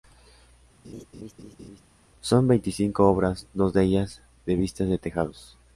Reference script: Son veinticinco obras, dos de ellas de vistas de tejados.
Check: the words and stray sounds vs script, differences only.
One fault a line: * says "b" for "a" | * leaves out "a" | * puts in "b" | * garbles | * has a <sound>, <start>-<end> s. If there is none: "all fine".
* has a laugh, 0.8-1.8 s